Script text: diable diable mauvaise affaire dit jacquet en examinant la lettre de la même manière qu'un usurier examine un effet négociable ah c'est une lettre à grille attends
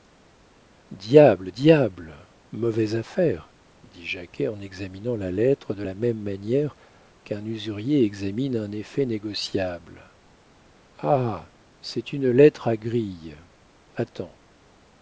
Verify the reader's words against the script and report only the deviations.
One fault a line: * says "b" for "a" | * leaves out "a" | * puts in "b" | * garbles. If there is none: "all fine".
all fine